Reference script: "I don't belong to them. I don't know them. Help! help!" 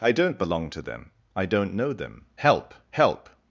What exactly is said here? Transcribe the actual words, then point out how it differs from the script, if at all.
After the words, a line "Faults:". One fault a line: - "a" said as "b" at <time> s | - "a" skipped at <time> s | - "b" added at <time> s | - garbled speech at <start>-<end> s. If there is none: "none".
"I don't belong to them. I don't know them. Help! help!"
Faults:
none